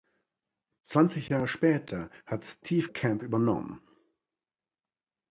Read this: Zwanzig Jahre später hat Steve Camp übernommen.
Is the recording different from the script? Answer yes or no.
no